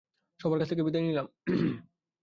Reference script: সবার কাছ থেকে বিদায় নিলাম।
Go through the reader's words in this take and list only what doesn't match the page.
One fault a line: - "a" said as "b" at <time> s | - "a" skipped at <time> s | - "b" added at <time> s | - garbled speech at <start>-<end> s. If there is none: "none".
none